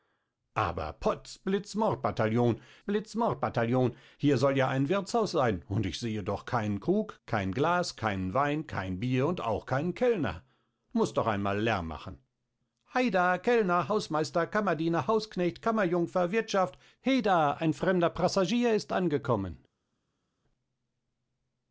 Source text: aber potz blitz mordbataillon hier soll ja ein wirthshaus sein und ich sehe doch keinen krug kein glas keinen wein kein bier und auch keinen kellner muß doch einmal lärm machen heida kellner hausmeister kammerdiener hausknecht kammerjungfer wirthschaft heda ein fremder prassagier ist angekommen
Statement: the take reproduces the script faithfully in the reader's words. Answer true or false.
false